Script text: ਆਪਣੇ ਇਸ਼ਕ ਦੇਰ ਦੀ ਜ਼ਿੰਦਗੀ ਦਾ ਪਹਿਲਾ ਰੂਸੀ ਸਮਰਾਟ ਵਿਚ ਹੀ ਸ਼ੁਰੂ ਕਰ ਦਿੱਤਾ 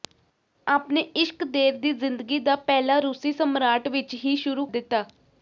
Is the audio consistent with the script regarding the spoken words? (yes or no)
no